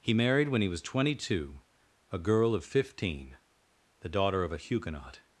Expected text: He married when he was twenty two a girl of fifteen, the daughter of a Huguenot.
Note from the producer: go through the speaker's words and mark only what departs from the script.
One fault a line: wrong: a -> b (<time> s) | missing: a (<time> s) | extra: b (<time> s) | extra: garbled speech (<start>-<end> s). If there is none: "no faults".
no faults